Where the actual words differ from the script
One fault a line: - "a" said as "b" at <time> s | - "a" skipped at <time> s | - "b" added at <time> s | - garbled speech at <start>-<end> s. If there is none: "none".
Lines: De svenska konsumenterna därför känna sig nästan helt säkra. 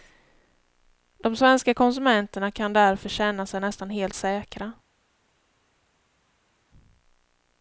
- "kan" added at 2.5 s